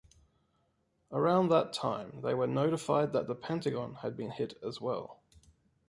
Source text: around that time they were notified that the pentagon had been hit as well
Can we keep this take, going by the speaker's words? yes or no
yes